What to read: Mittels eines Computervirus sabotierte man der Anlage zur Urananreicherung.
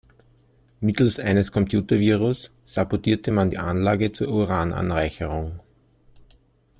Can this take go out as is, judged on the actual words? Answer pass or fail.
fail